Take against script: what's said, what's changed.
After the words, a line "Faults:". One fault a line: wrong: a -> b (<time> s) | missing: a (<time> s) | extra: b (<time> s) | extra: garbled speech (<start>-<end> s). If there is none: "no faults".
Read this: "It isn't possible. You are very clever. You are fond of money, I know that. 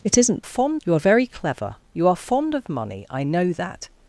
"It isn't fond. You are very clever. You are fond of money, I know that.
Faults:
wrong: possible -> fond (0.4 s)